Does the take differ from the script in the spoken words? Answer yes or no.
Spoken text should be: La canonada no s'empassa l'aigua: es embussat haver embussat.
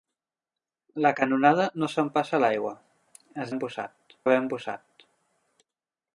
no